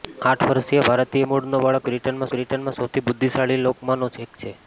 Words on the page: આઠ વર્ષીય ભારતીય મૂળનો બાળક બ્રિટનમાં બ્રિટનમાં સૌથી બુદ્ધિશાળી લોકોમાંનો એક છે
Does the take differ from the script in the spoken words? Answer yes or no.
no